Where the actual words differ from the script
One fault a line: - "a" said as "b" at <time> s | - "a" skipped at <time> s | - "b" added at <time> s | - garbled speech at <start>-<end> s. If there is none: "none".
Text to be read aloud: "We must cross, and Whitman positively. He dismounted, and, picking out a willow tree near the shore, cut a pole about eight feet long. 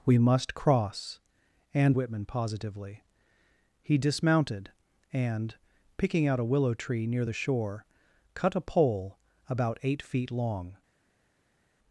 none